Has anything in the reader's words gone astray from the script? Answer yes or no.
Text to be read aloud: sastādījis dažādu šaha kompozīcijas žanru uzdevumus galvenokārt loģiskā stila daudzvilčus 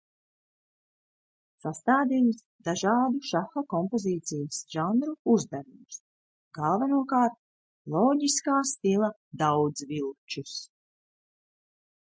no